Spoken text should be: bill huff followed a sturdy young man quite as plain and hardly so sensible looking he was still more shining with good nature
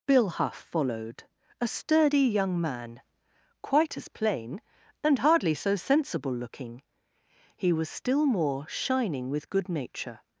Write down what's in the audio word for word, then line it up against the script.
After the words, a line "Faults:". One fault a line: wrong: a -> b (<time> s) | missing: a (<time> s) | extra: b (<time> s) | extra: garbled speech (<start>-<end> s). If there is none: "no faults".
bill huff followed a sturdy young man quite as plain and hardly so sensible looking he was still more shining with good nature
Faults:
no faults